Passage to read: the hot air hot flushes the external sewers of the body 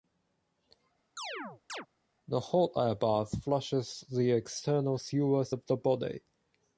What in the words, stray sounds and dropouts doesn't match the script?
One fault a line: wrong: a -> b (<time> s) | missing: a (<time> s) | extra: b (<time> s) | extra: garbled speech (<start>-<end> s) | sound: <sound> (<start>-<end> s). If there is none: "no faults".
sound: chirp (1.2-1.9 s)
wrong: hot -> bath (3.0 s)